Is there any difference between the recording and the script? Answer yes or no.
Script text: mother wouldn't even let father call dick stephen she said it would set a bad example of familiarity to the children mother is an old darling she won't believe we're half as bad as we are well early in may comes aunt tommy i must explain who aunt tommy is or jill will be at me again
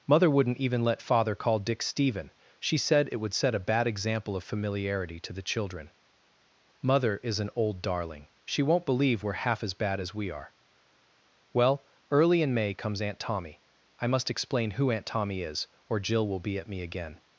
no